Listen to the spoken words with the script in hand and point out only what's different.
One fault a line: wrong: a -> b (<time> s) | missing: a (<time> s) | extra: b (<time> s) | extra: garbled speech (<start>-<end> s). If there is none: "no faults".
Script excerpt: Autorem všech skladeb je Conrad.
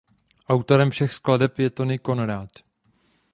extra: Tony (1.7 s)